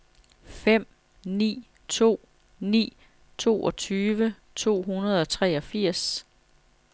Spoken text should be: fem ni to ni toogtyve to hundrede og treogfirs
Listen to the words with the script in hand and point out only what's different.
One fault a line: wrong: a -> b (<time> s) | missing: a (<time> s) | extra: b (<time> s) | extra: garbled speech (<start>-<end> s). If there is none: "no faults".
no faults